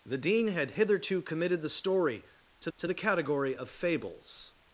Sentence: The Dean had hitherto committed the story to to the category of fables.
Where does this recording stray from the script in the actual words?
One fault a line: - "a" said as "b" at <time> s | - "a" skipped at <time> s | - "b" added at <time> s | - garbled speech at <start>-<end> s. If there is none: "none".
none